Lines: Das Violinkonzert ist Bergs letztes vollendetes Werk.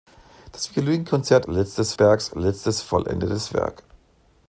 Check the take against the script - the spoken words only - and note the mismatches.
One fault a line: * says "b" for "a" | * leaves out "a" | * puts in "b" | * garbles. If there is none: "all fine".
* says "letztes" for "ist"